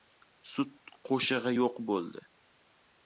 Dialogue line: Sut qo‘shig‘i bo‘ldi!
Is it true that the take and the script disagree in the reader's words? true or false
true